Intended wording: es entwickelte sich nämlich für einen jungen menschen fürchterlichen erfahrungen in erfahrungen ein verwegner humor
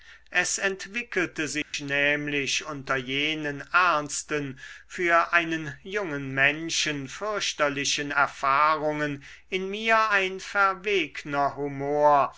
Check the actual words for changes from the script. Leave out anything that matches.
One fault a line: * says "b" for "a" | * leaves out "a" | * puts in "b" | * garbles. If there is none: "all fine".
* puts in "unter jenen ernsten"
* says "mir" for "erfahrungen"